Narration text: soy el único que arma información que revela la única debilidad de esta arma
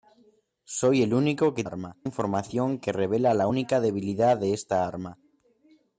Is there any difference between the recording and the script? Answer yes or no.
no